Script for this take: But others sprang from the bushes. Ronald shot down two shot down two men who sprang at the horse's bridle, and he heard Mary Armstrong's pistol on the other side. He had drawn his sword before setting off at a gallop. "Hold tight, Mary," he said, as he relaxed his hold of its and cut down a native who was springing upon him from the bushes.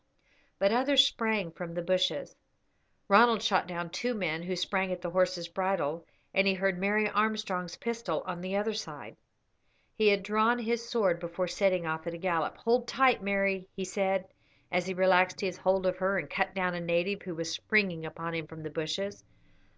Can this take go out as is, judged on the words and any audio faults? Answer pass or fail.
fail